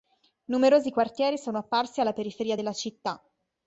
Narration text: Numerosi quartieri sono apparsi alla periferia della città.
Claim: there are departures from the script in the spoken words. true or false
false